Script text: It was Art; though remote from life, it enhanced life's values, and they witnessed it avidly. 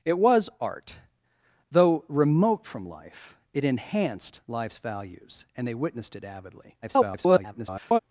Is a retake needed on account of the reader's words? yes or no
yes